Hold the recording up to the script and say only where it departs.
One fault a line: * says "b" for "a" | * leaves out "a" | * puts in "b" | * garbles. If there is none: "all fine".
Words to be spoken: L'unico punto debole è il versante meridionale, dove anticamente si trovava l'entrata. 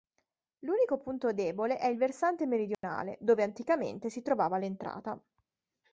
all fine